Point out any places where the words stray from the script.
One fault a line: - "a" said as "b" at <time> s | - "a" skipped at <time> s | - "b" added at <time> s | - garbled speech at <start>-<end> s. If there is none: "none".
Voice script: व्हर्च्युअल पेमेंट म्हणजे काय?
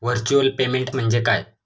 none